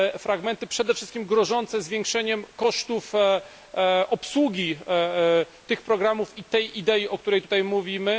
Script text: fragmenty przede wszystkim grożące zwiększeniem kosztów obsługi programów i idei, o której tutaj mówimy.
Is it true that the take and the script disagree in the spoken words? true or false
true